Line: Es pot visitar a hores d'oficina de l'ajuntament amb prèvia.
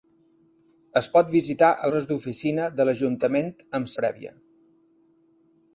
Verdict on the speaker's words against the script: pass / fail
pass